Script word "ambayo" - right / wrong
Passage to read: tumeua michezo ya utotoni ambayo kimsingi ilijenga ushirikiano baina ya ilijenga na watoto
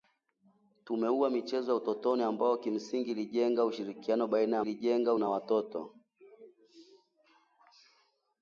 right